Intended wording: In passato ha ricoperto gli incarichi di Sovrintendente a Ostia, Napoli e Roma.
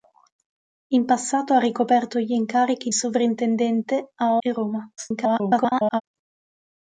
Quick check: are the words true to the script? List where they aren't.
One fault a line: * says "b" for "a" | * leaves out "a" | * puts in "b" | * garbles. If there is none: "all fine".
* leaves out "di"
* leaves out "Ostia Napoli"
* garbles